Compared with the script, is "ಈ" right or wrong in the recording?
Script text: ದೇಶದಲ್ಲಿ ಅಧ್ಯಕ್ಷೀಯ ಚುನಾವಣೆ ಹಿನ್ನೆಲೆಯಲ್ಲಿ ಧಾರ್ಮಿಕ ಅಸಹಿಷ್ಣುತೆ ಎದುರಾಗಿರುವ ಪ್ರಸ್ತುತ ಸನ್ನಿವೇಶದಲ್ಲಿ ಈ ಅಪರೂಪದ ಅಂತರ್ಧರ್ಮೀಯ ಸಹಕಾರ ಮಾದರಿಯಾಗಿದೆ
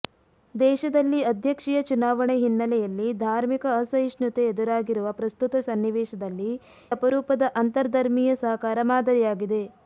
wrong